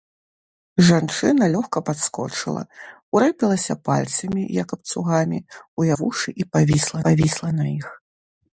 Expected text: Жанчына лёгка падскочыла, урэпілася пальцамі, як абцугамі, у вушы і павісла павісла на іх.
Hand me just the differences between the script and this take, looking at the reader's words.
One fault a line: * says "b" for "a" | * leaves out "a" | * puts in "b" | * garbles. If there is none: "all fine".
all fine